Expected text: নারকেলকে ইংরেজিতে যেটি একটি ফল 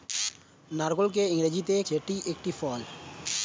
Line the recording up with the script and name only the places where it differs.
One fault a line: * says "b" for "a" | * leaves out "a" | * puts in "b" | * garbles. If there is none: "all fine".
all fine